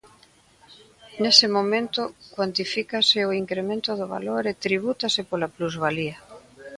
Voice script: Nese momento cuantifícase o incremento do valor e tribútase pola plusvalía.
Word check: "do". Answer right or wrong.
right